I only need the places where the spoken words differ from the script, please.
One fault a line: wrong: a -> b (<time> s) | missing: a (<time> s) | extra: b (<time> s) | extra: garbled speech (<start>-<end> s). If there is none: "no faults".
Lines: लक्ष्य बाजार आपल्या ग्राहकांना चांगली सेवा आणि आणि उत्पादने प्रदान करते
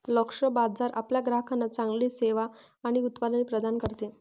missing: आणि (3.0 s)